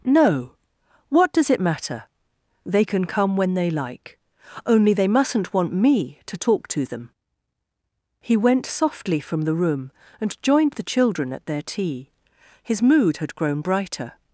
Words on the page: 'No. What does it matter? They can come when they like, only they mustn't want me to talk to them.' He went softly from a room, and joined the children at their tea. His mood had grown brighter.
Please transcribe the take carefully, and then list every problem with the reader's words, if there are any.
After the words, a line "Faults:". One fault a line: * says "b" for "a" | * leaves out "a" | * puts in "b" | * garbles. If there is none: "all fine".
'No. What does it matter? They can come when they like, only they mustn't want me to talk to them.' He went softly from the room, and joined the children at their tea. His mood had grown brighter.
Faults:
* says "the" for "a"